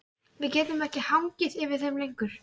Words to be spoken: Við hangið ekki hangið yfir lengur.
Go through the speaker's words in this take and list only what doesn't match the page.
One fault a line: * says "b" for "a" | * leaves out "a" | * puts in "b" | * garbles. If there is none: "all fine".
* says "getum" for "hangið"
* puts in "þeim"